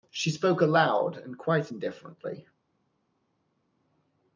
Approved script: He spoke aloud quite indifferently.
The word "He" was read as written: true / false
false